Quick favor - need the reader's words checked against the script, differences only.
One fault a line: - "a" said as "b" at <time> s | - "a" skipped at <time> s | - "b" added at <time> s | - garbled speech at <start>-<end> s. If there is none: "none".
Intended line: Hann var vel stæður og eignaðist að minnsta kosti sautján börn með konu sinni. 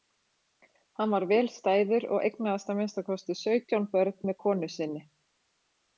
none